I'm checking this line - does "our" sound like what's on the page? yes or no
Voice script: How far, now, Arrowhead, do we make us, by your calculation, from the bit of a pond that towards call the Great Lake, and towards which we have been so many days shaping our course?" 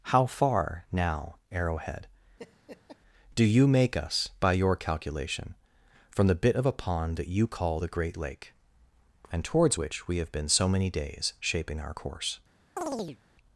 yes